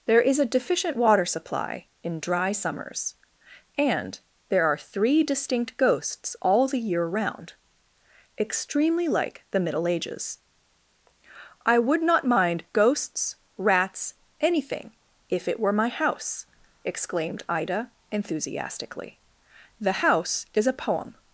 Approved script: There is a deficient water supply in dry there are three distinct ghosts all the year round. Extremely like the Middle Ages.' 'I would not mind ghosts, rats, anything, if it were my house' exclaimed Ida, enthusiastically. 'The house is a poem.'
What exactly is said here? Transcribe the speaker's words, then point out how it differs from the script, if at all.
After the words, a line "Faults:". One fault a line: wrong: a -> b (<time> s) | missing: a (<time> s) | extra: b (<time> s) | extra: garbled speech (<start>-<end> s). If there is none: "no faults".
There is a deficient water supply in dry summers, and there are three distinct ghosts all the year round. Extremely like the Middle Ages.' 'I would not mind ghosts, rats, anything, if it were my house' exclaimed Ida, enthusiastically. 'The house is a poem.'
Faults:
extra: summers and (2.5 s)